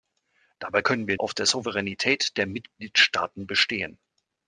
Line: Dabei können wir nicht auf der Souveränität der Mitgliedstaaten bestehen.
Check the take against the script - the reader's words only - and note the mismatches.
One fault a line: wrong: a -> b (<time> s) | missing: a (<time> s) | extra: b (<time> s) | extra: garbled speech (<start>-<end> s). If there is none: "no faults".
missing: nicht (1.2 s)